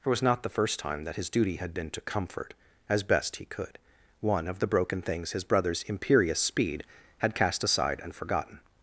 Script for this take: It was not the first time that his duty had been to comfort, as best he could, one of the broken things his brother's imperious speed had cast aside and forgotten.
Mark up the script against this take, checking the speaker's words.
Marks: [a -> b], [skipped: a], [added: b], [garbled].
It was not the first time that his duty had been to comfort, as best he could, one of the broken things his brother's imperious speed had cast aside and forgotten.